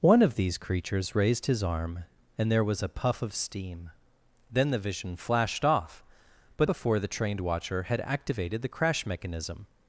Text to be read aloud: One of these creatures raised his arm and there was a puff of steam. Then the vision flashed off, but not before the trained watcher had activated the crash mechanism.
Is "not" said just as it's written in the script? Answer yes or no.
no